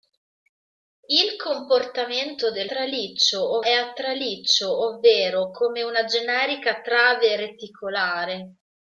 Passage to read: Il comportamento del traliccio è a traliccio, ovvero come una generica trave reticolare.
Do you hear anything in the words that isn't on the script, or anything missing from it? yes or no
no